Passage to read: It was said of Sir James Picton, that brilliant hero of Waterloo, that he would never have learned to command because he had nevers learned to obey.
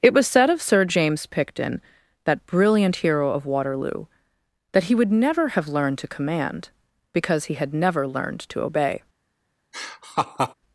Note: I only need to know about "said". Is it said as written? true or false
true